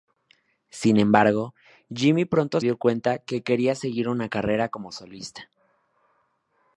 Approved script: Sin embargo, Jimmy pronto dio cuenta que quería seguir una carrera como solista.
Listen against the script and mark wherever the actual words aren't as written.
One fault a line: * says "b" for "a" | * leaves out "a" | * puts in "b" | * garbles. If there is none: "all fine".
all fine